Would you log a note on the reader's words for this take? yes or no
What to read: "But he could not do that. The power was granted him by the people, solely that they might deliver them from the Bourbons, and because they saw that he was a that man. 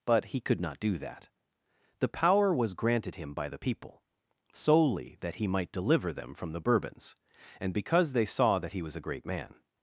yes